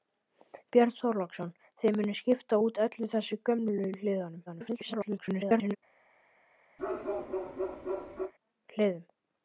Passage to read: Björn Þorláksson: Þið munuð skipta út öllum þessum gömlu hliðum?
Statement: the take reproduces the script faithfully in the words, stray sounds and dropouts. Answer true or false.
false